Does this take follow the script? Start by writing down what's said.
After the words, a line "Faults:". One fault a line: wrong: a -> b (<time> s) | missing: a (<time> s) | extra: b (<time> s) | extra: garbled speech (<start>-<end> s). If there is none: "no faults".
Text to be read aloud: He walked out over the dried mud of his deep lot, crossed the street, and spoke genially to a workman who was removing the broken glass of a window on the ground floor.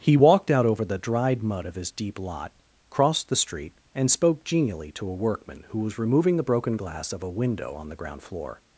He walked out over the dried mud of his deep lot, crossed the street, and spoke genially to a workman who was removing the broken glass of a window on the ground floor.
Faults:
no faults